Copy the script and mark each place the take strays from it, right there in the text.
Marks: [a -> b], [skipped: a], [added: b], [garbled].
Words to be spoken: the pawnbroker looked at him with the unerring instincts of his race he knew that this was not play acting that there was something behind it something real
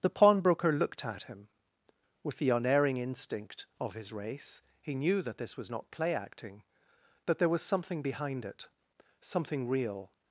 the pawnbroker looked at him with the unerring [instincts -> instinct] of his race he knew that this was not play acting that there was something behind it something real